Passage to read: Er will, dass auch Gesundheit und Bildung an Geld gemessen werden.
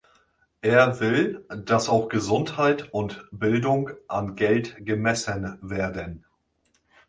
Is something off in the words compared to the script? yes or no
no